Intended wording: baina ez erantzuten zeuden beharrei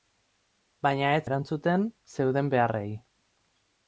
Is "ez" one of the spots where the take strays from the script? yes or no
no